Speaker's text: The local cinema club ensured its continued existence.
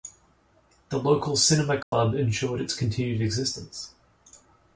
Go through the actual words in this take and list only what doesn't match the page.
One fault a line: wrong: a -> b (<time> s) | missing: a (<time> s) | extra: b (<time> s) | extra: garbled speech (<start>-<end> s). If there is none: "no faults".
no faults